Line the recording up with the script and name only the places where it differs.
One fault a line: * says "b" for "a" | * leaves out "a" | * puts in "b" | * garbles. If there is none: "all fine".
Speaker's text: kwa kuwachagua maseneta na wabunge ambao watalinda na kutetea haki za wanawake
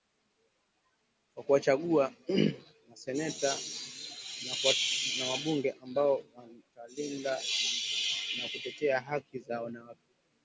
all fine